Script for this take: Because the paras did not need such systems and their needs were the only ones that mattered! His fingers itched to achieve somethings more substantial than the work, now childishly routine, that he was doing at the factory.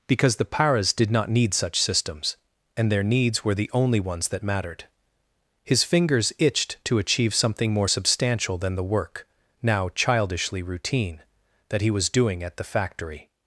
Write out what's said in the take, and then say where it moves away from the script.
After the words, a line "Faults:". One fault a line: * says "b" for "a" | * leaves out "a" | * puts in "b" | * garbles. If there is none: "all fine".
Because the paras did not need such systems and their needs were the only ones that mattered! His fingers itched to achieve something more substantial than the work, now childishly routine, that he was doing at the factory.
Faults:
* says "something" for "somethings"